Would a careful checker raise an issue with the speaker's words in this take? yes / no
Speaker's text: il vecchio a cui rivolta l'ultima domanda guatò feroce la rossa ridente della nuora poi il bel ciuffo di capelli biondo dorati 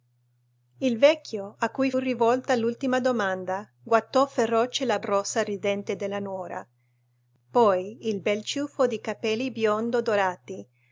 no